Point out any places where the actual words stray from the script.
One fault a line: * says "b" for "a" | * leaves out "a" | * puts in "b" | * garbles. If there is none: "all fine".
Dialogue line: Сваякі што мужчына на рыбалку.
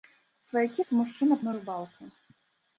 all fine